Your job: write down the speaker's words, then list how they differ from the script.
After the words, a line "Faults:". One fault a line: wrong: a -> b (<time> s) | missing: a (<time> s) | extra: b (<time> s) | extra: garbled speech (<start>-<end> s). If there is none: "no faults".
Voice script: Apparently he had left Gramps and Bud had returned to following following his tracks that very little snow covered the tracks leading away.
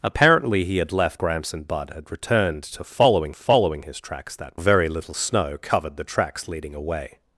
Apparently he had left Gramps and Bud had returned to following following his tracks that very little snow covered the tracks leading away.
Faults:
no faults